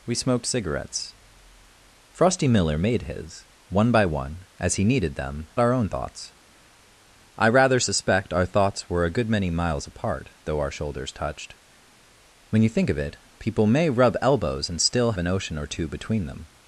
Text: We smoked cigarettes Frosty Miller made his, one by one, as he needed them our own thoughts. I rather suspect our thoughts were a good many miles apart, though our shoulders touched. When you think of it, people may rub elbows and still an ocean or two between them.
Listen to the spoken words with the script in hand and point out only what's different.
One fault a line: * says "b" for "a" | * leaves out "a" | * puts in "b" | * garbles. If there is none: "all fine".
all fine